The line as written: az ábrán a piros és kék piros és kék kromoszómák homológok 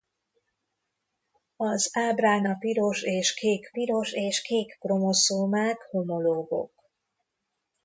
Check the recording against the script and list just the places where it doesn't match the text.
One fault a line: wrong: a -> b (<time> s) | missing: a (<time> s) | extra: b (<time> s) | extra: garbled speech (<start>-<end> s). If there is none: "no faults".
no faults